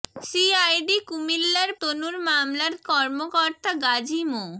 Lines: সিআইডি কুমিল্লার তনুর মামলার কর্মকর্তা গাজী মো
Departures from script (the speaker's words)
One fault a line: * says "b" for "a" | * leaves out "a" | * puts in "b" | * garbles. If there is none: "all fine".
all fine